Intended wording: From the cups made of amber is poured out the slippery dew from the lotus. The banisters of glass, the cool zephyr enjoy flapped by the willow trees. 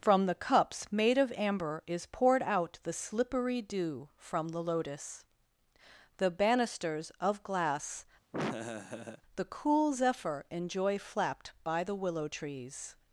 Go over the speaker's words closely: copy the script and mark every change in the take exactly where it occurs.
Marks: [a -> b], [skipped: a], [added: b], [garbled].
From the cups made of amber is poured out the slippery dew from the lotus. The banisters of glass, the cool zephyr enjoy flapped by the willow trees.